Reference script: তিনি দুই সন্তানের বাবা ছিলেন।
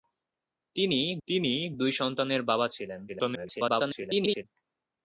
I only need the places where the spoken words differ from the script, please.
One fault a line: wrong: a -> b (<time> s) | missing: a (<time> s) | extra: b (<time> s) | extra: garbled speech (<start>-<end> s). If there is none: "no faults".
extra: তিনি (1.3 s)
extra: garbled speech (3.1-4.4 s)